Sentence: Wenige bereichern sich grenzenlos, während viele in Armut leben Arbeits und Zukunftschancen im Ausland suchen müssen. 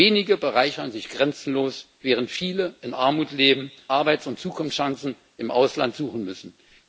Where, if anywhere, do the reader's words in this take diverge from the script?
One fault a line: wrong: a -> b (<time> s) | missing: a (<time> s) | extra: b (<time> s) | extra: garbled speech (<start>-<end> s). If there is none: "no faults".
no faults